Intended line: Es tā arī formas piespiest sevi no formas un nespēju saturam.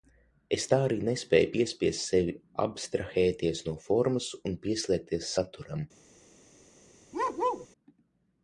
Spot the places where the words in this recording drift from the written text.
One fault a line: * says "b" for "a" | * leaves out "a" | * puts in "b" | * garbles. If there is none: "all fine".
* says "nespēju" for "formas"
* puts in "abstrahēties"
* says "pieslēgties" for "nespēju"